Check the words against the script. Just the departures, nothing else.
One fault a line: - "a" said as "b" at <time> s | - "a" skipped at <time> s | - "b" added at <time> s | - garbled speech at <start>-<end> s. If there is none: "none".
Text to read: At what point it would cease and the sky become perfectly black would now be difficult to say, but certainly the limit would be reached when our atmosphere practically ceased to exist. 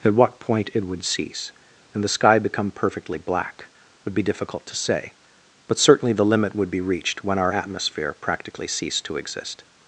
- "now" skipped at 4.1 s